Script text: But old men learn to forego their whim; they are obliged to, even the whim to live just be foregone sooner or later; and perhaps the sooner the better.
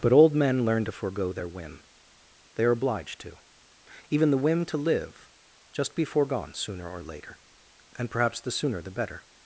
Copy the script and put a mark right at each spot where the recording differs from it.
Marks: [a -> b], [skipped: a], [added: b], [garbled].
But old men learn to forego their whim; they are obliged to, even the whim to live just be foregone sooner or later; and perhaps the sooner the better.